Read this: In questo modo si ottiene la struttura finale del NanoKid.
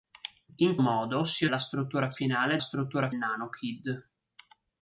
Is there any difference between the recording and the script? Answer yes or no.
yes